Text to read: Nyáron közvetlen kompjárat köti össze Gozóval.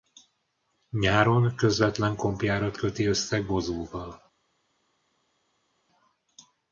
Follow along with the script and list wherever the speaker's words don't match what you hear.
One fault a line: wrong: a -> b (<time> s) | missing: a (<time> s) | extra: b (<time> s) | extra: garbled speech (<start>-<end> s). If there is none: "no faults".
no faults